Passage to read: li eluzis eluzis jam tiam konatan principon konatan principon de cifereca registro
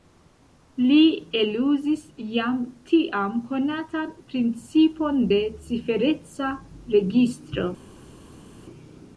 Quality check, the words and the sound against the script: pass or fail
fail